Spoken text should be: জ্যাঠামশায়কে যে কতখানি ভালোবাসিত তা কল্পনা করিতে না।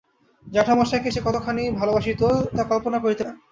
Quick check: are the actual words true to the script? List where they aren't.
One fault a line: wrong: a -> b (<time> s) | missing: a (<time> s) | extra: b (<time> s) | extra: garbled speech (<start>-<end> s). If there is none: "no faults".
no faults